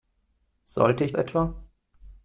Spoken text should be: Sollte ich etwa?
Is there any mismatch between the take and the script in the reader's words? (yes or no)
no